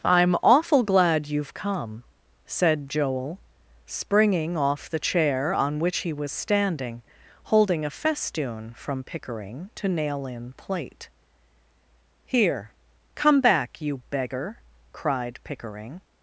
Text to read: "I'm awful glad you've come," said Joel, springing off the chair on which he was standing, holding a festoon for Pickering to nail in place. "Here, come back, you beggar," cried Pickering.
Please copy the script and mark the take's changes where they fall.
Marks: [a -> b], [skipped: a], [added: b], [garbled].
"I'm awful glad you've come," said Joel, springing off the chair on which he was standing, holding a festoon [for -> from] Pickering to nail in [place. -> plate] "Here, come back, you beggar," cried Pickering.